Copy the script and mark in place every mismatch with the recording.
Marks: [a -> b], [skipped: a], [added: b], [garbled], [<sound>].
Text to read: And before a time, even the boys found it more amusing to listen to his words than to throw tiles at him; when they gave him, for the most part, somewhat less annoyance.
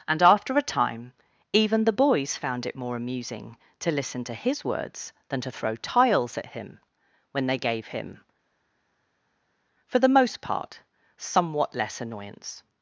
And [before -> after] a time, even the boys found it more amusing to listen to his words than to throw tiles at him; when they gave him, for the most part, somewhat less annoyance.